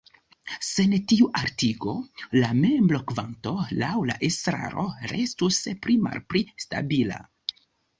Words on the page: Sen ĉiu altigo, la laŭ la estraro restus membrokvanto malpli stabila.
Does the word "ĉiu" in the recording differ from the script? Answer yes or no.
yes